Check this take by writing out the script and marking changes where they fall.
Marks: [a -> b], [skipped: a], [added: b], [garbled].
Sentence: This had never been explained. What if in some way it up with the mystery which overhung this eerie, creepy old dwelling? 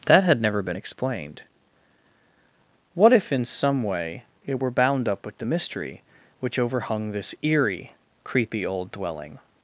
[This -> That] had never been explained. What if in some way it [added: were bound] up with the mystery which overhung this eerie, creepy old dwelling?